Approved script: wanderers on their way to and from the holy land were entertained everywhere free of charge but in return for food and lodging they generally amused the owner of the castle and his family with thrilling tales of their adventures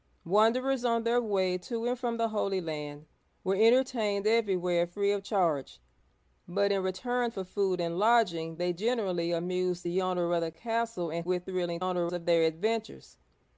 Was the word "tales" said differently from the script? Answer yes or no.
yes